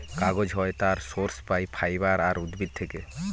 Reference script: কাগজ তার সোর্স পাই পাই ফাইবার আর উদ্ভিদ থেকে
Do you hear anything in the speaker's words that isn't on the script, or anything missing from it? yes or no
yes